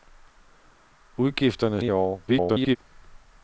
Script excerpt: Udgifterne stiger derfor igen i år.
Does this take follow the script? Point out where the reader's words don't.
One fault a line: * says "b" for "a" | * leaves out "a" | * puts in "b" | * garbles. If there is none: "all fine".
* leaves out "stiger derfor igen"
* garbles